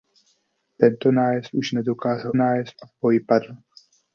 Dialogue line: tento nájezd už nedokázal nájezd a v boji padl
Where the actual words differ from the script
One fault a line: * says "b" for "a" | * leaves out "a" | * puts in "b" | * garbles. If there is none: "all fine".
all fine